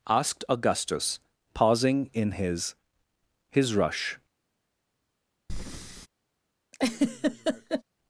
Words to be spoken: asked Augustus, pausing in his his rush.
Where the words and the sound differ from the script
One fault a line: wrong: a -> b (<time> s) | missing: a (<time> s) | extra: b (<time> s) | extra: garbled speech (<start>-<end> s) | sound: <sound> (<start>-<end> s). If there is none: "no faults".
sound: breath (5.5-6.1 s)
sound: laugh (6.7-7.8 s)